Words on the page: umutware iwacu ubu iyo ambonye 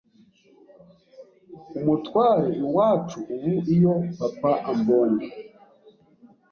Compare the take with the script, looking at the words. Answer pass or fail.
fail